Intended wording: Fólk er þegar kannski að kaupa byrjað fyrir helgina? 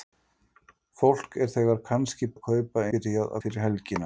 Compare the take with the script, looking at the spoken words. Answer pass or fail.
pass